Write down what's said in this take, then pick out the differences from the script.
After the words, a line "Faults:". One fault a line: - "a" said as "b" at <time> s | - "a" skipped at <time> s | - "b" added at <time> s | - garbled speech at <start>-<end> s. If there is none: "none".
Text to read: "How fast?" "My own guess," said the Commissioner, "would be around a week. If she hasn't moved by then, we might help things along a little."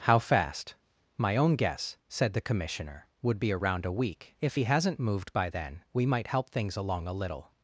"How fast?" "My own guess," said the Commissioner, "would be around a week. If he hasn't moved by then, we might help things along a little."
Faults:
- "she" said as "he" at 4.5 s